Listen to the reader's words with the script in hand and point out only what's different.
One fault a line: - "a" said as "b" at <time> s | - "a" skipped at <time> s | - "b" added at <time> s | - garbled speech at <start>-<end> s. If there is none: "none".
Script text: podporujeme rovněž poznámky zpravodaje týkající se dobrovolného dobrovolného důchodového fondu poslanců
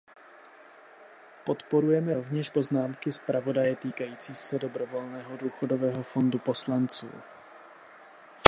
- "dobrovolného" skipped at 5.4 s